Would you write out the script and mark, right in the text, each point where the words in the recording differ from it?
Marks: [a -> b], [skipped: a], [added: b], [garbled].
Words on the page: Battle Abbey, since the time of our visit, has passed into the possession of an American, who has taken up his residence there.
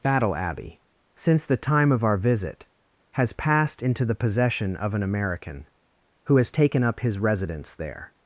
Battle Abbey, since the time of our visit, has passed into the possession of an American, who has taken up his residence there.